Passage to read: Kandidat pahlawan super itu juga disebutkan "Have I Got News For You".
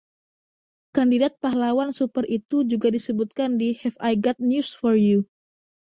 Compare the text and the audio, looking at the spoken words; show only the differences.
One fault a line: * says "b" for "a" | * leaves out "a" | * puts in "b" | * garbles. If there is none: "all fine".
* puts in "di"